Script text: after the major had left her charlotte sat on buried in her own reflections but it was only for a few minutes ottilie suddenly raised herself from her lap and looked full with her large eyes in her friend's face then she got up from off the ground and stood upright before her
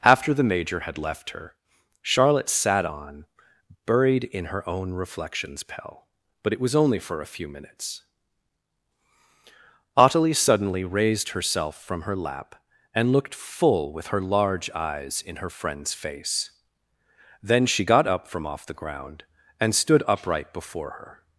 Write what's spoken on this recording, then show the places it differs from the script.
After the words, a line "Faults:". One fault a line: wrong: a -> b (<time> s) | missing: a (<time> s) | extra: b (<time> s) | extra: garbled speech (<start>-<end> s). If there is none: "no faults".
after the major had left her charlotte sat on buried in her own reflections pell but it was only for a few minutes ottilie suddenly raised herself from her lap and looked full with her large eyes in her friend's face then she got up from off the ground and stood upright before her
Faults:
extra: pell (5.6 s)